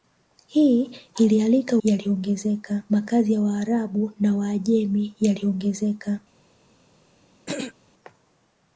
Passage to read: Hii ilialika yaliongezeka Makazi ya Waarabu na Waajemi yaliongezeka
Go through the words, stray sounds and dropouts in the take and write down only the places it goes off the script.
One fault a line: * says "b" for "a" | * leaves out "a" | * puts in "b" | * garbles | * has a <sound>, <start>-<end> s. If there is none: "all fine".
* has a throat clearing, 7.5-7.7 s